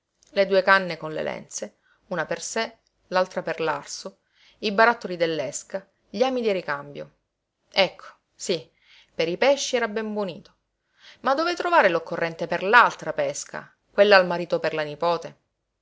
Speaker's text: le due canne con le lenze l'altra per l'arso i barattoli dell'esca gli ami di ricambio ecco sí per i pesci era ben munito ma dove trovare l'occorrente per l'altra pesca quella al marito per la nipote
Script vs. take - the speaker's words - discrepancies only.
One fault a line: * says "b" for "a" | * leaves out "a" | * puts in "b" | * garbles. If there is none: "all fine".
* puts in "una per sé"